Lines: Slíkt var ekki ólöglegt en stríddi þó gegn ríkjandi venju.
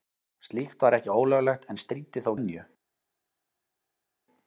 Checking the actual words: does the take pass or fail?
fail